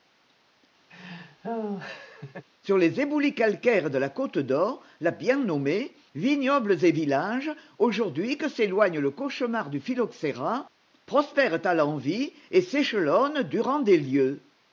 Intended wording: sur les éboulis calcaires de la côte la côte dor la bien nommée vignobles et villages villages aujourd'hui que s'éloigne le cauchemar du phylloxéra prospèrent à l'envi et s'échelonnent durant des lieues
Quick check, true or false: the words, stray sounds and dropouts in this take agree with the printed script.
false